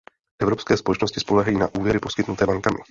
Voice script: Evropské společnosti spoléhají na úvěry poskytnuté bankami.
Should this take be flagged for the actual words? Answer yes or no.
no